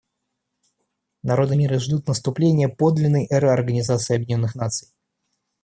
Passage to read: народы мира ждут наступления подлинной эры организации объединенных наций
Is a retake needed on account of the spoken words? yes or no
no